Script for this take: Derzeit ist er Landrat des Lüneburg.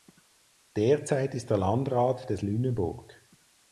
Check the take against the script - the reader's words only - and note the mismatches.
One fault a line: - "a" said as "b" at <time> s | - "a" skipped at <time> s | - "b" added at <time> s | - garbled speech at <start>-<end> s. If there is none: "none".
none